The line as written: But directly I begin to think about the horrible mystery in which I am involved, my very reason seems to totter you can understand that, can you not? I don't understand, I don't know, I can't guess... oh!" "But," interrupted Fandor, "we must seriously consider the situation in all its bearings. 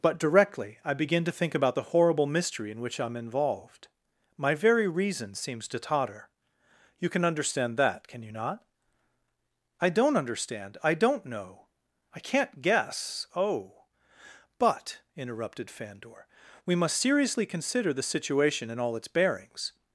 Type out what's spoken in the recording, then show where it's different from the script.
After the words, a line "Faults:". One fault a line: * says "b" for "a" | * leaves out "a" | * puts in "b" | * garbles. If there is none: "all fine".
But directly I begin to think about the horrible mystery in which I am involved, my very reason seems to totter you can understand that, can you not? I don't understand, I don't know, I can't guess... oh!" "But," interrupted Fandor, "we must seriously consider the situation in all its bearings.
Faults:
all fine